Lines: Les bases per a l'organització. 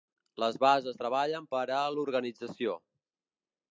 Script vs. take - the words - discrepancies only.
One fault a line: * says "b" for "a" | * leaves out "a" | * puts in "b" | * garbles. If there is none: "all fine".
* puts in "treballen"